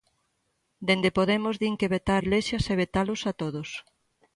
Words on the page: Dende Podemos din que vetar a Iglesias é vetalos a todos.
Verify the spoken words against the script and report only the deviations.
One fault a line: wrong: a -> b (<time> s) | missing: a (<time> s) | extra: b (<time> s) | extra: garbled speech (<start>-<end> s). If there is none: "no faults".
missing: a (2.2 s)